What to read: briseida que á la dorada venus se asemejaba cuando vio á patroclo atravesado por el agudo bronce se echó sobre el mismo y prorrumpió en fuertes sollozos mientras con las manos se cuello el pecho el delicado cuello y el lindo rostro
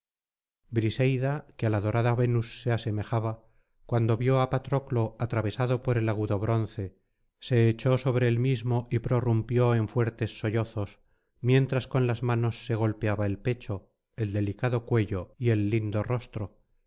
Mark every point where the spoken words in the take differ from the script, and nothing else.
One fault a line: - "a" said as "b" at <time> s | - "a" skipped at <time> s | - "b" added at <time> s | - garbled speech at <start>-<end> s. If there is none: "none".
- "cuello" said as "golpeaba" at 12.7 s